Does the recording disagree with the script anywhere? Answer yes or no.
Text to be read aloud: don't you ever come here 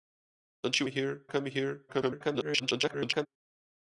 yes